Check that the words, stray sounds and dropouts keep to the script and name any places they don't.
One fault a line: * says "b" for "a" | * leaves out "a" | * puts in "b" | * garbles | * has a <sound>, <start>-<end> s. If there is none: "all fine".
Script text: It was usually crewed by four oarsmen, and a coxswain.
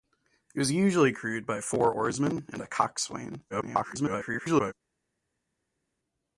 * garbles